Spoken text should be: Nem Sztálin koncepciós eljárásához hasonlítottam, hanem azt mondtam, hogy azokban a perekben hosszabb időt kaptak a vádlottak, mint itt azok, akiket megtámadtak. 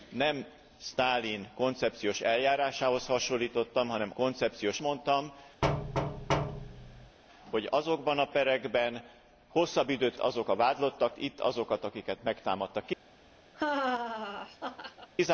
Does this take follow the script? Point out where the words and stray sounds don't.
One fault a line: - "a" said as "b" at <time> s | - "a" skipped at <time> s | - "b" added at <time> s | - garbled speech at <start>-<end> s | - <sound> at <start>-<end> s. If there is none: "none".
- "azt" said as "koncepciós" at 4.1 s
- thud at 5.6-7.2 s
- "kaptak" said as "azok" at 10.2 s
- "mint" skipped at 11.2 s
- laugh at 13.5-15.1 s